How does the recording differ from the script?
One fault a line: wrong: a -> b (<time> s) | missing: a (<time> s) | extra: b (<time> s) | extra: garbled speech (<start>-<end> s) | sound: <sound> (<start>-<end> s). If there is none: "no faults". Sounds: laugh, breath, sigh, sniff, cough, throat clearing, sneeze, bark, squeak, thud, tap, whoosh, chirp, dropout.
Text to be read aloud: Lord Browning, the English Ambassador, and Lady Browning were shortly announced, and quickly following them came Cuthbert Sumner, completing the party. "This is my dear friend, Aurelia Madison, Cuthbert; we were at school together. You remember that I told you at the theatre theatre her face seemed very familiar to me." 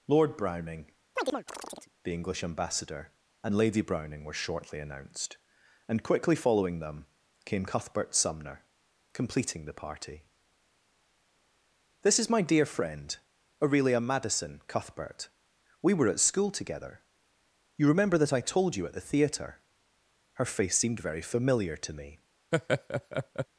sound: chirp (1.2-1.9 s)
missing: theatre (19.6 s)
sound: laugh (22.5-23.5 s)